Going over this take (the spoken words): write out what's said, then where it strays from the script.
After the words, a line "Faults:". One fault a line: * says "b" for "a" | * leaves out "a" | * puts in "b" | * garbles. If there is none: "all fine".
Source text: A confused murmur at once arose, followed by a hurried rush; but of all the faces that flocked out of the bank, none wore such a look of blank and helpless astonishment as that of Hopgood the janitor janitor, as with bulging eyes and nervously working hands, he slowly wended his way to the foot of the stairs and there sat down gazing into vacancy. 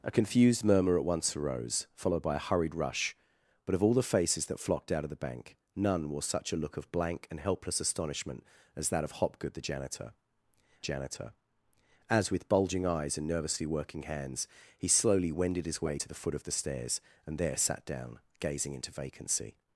A confused murmur at once arose, followed by a hurried rush; but of all the faces that flocked out of the bank, none wore such a look of blank and helpless astonishment as that of Hopgood the janitor janitor, as with bulging eyes and nervously working hands, he slowly wended his way to the foot of the stairs and there sat down gazing into vacancy.
Faults:
all fine